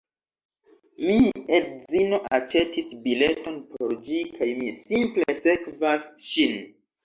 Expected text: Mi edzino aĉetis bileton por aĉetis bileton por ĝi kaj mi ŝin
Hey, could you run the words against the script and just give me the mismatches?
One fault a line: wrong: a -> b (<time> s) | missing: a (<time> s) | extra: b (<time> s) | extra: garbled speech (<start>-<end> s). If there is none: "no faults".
missing: aĉetis bileton por (4.0 s)
extra: simple sekvas (4.8 s)